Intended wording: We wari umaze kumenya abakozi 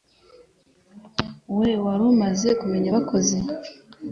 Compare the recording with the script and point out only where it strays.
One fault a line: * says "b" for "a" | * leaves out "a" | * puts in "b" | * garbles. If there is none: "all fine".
all fine